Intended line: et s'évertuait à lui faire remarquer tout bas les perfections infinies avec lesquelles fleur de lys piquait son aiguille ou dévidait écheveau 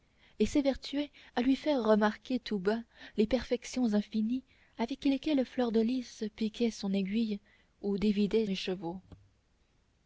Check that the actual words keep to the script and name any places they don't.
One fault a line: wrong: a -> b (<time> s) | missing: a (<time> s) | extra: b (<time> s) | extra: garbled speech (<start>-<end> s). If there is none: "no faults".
no faults